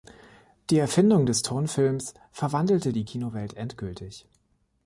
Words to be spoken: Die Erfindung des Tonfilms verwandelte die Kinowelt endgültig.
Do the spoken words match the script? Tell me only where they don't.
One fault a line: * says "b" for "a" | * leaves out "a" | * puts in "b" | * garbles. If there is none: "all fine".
all fine